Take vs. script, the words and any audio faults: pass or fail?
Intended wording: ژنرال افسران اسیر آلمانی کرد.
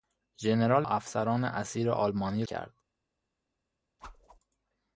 fail